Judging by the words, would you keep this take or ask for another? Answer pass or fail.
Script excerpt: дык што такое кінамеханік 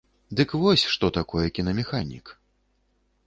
fail